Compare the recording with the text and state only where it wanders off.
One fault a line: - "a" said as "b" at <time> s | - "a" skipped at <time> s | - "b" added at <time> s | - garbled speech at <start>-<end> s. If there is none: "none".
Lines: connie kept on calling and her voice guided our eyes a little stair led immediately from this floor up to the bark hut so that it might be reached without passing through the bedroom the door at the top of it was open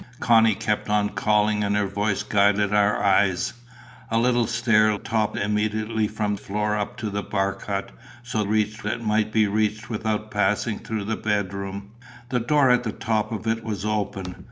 - "led" said as "top" at 5.0 s
- "this" skipped at 6.4 s
- "that" said as "reached" at 8.4 s